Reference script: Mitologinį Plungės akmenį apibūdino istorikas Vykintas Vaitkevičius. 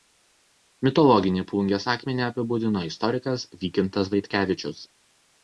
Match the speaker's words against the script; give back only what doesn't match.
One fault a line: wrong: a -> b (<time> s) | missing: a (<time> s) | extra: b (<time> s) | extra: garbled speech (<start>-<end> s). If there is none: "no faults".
no faults